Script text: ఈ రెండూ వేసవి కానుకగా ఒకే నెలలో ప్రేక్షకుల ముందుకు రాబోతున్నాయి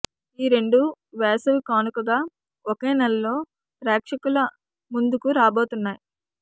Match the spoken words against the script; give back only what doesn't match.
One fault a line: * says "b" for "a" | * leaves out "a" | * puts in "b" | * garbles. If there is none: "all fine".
all fine